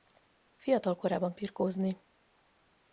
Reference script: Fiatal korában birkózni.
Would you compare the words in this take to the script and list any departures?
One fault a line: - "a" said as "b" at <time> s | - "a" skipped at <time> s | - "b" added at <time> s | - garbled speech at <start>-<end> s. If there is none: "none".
none